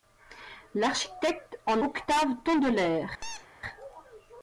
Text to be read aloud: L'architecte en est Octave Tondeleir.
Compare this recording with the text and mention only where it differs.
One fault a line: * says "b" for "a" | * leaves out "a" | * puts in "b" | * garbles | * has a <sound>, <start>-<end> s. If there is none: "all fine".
* leaves out "est"
* has a squeak, 3.2-3.5 s